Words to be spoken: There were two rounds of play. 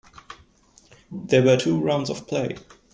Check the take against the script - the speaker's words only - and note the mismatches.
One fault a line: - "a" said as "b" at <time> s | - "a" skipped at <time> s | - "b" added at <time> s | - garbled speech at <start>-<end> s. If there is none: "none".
none